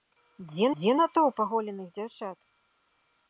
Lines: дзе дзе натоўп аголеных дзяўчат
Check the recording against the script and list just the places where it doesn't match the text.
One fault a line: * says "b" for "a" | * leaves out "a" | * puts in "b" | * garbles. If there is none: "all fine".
all fine